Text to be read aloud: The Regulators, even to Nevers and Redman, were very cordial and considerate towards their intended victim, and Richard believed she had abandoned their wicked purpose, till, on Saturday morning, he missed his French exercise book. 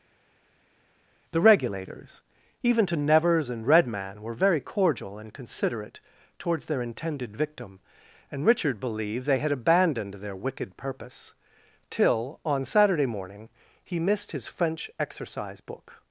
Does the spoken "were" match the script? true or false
true